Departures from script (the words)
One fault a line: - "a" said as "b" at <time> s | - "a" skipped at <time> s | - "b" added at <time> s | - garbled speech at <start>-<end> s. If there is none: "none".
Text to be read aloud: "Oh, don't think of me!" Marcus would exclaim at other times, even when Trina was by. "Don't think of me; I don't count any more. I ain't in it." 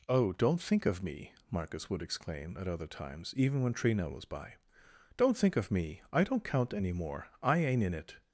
none